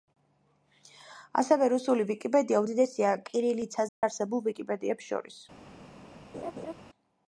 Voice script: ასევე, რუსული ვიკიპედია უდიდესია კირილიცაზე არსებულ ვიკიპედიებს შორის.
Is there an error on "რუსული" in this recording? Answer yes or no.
no